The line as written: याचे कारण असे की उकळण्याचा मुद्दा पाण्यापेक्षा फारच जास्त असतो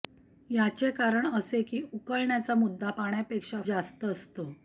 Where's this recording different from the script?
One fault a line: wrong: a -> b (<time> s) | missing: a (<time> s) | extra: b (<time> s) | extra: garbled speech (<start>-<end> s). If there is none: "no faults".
missing: फारच (3.6 s)